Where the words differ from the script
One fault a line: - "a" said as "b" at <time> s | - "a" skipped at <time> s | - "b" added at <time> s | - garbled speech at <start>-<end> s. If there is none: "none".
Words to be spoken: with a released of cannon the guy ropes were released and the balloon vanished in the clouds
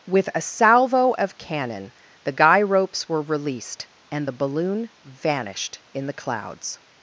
- "released" said as "salvo" at 0.4 s